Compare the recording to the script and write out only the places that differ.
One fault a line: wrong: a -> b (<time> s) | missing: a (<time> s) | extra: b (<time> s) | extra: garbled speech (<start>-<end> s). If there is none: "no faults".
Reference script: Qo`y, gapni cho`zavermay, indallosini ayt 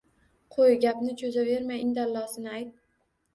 no faults